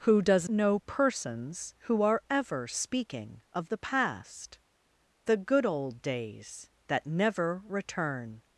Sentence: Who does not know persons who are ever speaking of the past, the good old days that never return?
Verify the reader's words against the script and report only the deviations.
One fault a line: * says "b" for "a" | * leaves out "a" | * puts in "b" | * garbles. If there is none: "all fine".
* leaves out "not"